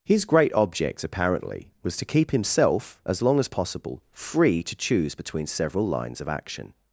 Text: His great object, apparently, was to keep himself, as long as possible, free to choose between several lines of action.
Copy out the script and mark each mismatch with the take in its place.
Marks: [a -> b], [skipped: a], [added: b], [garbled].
His great object, apparently, was to keep himself, as long as possible, free to choose between several lines of action.